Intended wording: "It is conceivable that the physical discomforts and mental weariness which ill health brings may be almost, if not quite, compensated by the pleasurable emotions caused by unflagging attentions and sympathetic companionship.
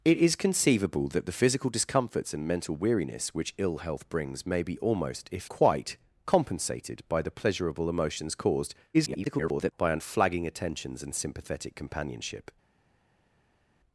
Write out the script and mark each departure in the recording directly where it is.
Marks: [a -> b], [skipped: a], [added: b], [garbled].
"It is conceivable that the physical discomforts and mental weariness which ill health brings may be almost, if [skipped: not] quite, compensated by the pleasurable emotions caused [garbled] by unflagging attentions and sympathetic companionship.